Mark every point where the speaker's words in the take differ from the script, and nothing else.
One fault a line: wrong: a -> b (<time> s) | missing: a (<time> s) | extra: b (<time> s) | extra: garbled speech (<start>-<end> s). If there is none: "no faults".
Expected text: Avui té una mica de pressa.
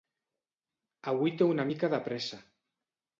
no faults